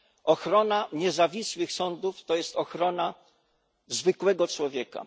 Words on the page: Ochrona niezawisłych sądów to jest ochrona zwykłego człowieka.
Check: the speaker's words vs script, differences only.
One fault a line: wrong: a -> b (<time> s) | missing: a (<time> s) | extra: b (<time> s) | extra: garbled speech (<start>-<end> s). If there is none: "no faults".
no faults